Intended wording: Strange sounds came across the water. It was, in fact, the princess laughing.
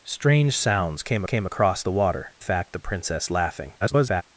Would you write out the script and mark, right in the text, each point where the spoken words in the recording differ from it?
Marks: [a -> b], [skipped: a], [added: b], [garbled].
Strange sounds came [added: came] across the water. [skipped: It was, in] fact, the princess laughing. [garbled]